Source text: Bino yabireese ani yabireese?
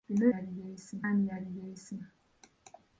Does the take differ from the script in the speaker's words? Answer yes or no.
no